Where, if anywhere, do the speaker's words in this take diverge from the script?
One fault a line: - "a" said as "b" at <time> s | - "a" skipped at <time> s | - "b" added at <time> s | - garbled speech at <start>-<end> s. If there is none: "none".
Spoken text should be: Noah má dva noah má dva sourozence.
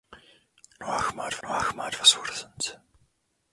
none